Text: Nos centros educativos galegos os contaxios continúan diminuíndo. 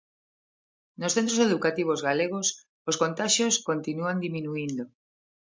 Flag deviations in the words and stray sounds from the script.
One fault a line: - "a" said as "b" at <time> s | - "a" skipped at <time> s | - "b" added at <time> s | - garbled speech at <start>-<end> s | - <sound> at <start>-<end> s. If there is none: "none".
none